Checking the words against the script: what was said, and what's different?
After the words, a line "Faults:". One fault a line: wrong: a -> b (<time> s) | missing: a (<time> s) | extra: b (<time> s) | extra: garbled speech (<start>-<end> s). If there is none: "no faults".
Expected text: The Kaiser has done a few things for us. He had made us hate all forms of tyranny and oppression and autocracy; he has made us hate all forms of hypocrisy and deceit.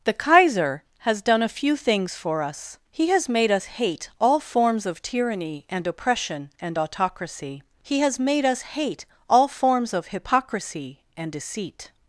The Kaiser has done a few things for us. He has made us hate all forms of tyranny and oppression and autocracy; he has made us hate all forms of hypocrisy and deceit.
Faults:
wrong: had -> has (3.1 s)